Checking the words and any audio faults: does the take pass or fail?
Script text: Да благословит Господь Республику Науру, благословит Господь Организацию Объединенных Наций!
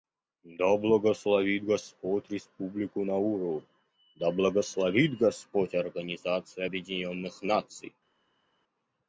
fail